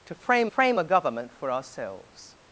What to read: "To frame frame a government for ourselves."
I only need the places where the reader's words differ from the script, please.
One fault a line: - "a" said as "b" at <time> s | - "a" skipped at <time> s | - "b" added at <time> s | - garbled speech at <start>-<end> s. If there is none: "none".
none